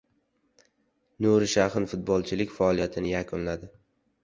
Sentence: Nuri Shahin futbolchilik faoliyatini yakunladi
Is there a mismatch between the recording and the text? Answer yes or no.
no